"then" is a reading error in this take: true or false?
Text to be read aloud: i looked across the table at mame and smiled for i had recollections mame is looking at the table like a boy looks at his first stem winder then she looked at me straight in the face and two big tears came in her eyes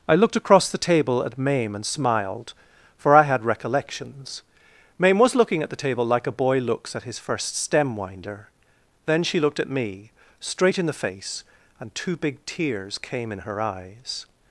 false